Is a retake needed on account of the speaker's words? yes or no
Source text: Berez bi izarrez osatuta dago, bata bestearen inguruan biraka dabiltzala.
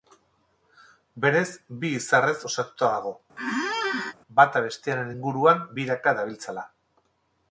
no